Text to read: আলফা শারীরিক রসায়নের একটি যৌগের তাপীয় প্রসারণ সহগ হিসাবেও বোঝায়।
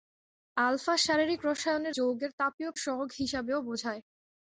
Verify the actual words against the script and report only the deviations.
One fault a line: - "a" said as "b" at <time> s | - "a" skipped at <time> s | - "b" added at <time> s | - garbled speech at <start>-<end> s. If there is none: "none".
- "একটি" skipped at 1.9 s
- "প্রসারণ" skipped at 2.7 s